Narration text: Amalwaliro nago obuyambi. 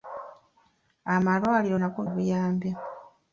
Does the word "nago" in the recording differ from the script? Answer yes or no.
no